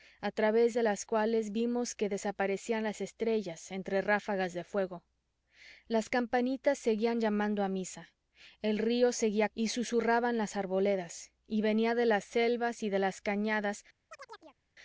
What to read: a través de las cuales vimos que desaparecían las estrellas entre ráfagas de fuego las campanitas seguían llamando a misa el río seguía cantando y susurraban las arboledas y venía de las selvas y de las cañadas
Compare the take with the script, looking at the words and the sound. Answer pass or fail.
fail